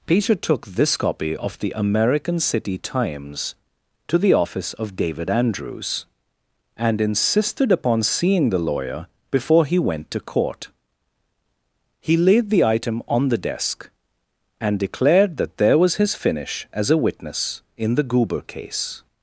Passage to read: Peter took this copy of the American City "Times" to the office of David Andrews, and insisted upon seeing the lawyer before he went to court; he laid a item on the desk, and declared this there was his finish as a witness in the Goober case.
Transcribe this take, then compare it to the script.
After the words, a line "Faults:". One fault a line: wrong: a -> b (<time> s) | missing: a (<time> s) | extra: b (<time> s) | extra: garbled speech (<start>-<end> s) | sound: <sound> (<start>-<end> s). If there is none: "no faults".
Peter took this copy of the American City "Times" to the office of David Andrews, and insisted upon seeing the lawyer before he went to court; he laid the item on the desk, and declared that there was his finish as a witness in the Goober case.
Faults:
wrong: a -> the (12.5 s)
wrong: this -> that (15.3 s)